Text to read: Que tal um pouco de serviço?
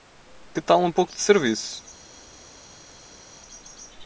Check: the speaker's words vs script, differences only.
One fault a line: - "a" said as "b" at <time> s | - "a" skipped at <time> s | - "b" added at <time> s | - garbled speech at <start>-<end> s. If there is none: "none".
none